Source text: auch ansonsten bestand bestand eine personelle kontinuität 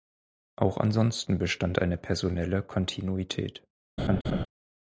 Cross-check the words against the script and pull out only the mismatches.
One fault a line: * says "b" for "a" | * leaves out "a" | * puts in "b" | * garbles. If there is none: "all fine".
* leaves out "bestand"